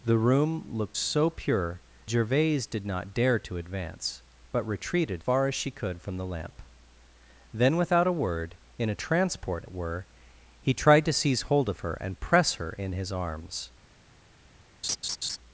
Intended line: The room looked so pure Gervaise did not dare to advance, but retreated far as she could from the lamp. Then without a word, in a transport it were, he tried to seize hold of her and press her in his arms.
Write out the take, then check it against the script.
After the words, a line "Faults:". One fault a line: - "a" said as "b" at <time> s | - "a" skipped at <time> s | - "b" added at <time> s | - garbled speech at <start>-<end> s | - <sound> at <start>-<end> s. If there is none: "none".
The room looked so pure Gervaise did not dare to advance, but retreated far as she could from the lamp. Then without a word, in a transport it were, he tried to seize hold of her and press her in his arms.
Faults:
- laugh at 14.8-15.4 s